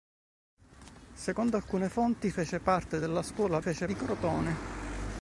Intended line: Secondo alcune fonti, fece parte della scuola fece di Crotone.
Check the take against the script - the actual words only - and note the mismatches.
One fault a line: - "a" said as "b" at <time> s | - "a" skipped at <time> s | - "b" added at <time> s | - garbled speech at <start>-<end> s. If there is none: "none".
none